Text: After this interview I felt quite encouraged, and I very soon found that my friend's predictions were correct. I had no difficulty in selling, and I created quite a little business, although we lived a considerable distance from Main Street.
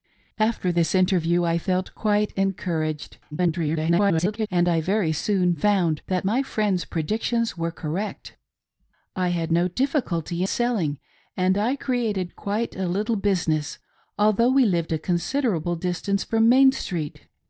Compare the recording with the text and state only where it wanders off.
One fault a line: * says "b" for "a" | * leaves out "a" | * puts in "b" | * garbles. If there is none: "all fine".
* garbles
* leaves out "in"